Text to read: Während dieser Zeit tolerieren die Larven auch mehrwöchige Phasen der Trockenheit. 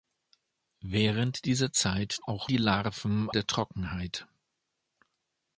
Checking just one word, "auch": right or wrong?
wrong